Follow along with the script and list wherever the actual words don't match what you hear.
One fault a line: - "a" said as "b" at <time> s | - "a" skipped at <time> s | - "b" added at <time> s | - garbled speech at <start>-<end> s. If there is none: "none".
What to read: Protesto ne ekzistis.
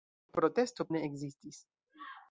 none